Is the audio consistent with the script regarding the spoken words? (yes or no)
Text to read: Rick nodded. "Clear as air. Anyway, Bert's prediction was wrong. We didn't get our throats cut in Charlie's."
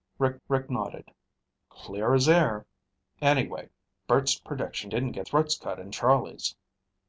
no